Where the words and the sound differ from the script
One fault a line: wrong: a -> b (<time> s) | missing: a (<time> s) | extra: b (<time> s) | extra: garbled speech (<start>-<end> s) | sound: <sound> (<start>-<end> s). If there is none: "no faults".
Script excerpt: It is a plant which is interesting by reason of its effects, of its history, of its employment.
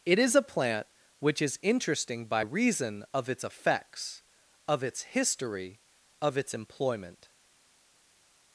no faults